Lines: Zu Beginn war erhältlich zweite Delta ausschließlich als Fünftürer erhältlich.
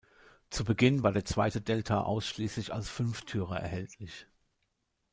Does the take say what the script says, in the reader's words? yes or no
no